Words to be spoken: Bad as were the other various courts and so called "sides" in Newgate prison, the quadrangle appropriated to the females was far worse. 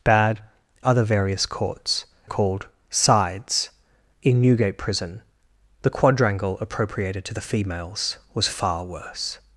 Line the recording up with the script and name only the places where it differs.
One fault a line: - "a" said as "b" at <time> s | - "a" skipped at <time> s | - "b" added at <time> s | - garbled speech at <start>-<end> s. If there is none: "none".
- "as were the" skipped at 0.4 s
- "and so" skipped at 2.0 s